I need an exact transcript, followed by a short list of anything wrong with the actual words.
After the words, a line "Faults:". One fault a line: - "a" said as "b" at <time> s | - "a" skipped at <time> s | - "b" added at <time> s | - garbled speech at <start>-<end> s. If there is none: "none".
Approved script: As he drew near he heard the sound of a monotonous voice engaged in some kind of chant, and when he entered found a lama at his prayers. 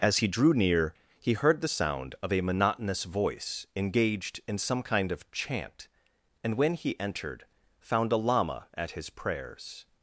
As he drew near he heard the sound of a monotonous voice engaged in some kind of chant, and when he entered found a lama at his prayers.
Faults:
none